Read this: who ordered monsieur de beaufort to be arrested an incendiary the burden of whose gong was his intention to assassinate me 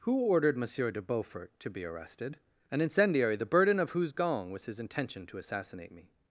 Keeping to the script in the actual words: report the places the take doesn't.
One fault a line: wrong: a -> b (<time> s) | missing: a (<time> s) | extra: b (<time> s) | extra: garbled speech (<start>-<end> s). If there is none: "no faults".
no faults